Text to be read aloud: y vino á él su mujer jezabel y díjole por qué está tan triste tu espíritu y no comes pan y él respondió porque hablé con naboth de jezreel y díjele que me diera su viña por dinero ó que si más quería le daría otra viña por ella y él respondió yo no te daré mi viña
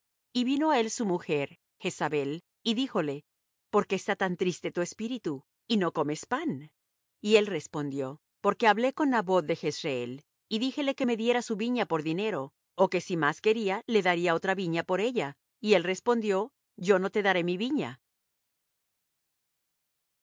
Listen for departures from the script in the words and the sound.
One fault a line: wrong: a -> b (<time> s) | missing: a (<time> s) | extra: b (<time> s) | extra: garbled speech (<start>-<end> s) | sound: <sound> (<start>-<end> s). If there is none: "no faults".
no faults